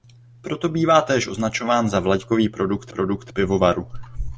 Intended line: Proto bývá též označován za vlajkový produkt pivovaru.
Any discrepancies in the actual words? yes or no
yes